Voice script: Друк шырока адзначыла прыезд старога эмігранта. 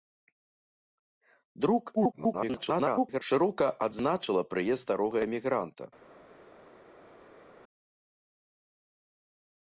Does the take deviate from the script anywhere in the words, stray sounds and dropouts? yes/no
yes